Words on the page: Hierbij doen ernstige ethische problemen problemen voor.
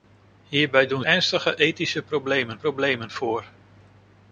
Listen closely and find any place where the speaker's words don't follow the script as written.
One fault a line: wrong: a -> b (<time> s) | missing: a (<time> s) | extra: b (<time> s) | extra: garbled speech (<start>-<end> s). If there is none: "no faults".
no faults